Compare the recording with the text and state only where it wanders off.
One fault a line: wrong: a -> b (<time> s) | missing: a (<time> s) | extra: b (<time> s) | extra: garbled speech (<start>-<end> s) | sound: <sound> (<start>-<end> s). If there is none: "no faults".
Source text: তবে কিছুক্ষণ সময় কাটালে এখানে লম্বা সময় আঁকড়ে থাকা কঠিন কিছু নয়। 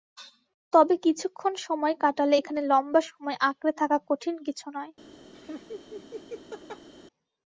sound: laugh (5.3-6.9 s)